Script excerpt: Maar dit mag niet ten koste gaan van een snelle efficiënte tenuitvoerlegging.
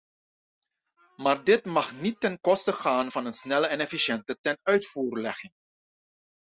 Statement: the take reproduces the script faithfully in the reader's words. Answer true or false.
false